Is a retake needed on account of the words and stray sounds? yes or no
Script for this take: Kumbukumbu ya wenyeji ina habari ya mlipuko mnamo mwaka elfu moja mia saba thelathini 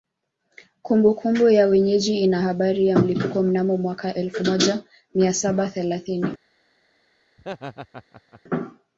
yes